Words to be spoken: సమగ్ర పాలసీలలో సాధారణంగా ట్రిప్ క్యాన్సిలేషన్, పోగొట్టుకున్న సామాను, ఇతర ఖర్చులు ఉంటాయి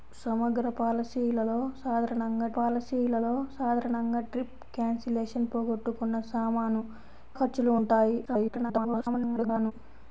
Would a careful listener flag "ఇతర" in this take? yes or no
yes